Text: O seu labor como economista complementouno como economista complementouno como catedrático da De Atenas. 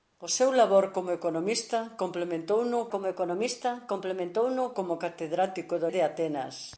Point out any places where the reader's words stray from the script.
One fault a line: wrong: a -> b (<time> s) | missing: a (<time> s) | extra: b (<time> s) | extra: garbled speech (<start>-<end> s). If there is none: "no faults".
no faults